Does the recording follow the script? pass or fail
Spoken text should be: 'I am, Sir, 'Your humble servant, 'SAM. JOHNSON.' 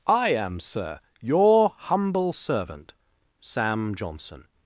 pass